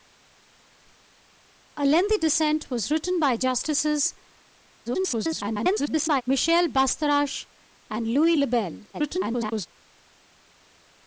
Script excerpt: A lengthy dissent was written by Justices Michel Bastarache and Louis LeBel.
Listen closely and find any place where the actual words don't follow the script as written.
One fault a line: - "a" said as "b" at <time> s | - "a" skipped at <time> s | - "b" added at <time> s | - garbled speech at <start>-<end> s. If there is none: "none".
- garbled speech at 4.9-6.2 s
- garbled speech at 8.9-9.7 s